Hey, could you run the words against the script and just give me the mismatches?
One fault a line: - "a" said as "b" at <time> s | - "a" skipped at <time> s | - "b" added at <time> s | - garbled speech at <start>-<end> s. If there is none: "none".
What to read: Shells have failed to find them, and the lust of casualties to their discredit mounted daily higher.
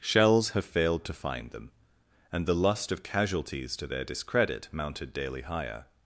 none